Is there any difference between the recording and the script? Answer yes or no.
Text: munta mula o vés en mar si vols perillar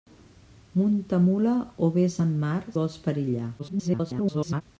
yes